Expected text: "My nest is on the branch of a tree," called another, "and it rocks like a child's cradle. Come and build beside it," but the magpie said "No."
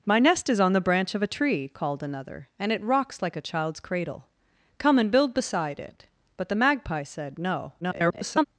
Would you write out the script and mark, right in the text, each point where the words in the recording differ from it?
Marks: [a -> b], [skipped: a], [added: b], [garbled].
"My nest is on the branch of a tree," called another, "and it rocks like a child's cradle. Come and build beside it," but the magpie said "No." [garbled]